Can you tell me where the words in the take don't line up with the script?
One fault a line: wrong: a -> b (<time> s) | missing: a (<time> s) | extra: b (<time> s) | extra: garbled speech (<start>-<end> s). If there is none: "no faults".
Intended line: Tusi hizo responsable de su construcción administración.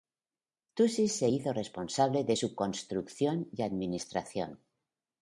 extra: se (1.1 s)
extra: y (3.5 s)